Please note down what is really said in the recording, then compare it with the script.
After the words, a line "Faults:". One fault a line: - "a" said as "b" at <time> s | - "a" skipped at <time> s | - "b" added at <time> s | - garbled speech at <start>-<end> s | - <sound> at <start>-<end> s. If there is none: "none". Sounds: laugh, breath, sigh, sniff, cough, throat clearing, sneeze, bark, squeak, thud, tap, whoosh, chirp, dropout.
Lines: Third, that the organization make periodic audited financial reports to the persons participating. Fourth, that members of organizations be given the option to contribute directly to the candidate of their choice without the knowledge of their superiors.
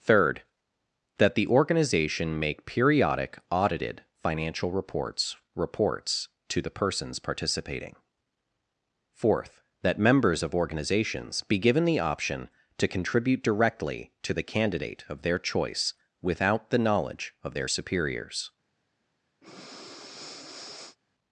Third, that the organization make periodic audited financial reports reports to the persons participating. Fourth, that members of organizations be given the option to contribute directly to the candidate of their choice without the knowledge of their superiors.
Faults:
- "reports" added at 5.5 s
- breath at 19.4-21.0 s